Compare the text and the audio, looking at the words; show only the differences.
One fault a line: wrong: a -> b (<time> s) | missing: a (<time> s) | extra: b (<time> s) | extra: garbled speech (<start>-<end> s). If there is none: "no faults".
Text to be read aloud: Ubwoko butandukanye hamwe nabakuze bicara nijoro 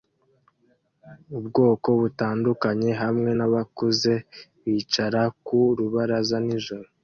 extra: ku rubaraza (5.5 s)